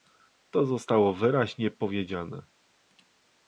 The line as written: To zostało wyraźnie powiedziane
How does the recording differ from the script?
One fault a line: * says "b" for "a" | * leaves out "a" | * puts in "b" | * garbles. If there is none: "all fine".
all fine